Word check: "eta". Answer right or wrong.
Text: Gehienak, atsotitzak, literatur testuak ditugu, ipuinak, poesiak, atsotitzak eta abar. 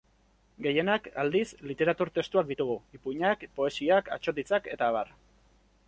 right